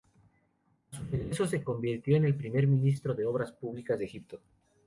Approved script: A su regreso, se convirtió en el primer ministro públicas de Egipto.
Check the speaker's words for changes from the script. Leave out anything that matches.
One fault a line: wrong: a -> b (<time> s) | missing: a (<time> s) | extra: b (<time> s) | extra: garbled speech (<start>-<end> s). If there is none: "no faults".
extra: de obras (3.1 s)